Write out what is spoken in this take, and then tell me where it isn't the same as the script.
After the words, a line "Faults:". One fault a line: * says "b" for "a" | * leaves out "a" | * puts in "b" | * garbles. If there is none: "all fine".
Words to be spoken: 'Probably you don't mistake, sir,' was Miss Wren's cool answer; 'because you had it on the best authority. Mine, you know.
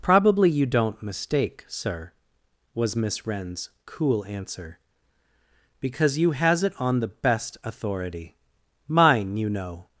'Probably you don't mistake, sir,' was Miss Wren's cool answer; 'because you has it on the best authority. Mine, you know.
Faults:
* says "has" for "had"